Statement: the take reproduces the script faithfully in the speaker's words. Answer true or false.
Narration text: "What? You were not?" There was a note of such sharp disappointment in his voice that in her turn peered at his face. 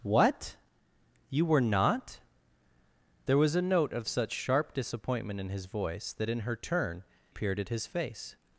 true